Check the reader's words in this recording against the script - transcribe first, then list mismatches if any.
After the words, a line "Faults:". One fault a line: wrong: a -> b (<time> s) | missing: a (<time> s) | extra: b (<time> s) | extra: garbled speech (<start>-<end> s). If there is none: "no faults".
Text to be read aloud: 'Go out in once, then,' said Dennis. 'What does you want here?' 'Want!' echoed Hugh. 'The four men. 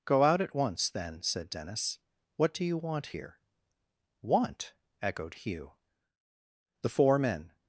'Go out at once, then,' said Dennis. 'What do you want here?' 'Want!' echoed Hugh. 'The four men.
Faults:
wrong: in -> at (0.4 s)
wrong: does -> do (2.5 s)